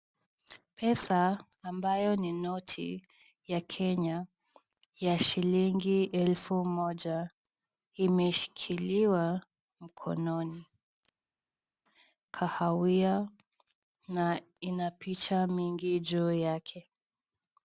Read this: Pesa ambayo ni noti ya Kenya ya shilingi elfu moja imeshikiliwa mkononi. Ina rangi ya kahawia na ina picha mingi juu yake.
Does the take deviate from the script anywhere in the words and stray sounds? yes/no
yes